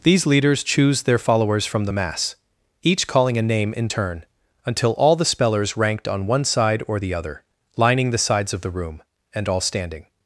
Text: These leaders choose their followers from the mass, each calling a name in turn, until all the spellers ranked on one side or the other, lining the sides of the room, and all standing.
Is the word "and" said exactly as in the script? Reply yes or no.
yes